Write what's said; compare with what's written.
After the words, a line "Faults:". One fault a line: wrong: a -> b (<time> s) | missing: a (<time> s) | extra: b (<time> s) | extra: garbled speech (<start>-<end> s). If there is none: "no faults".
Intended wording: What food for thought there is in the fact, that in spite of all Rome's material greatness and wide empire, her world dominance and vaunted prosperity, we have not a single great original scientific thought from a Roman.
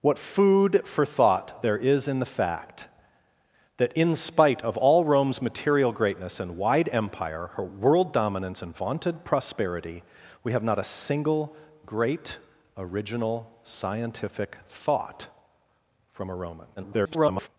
What food for thought there is in the fact, that in spite of all Rome's material greatness and wide empire, her world dominance and vaunted prosperity, we have not a single great original scientific thought from a Roman. [garbled]
Faults:
extra: garbled speech (16.8-17.5 s)